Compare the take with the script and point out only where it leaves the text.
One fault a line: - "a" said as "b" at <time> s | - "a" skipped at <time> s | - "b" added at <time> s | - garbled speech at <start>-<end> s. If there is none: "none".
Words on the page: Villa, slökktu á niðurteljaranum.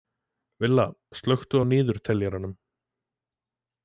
none